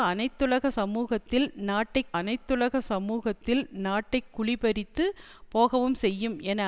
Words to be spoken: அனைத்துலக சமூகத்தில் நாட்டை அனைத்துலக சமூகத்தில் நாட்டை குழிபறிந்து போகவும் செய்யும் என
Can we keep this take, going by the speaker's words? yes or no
yes